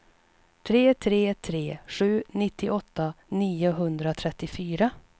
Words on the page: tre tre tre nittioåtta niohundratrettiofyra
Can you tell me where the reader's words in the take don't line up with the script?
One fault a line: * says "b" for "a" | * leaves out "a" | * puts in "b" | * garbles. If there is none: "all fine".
* puts in "sju"